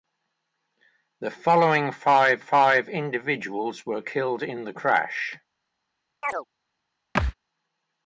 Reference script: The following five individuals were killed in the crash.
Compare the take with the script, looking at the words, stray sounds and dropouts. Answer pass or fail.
fail